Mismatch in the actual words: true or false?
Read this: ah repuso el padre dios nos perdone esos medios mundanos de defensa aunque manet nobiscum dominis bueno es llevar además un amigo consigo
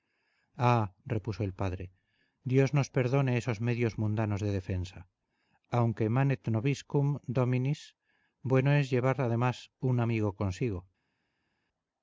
false